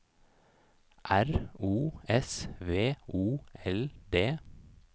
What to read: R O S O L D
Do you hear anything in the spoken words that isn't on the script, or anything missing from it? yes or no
yes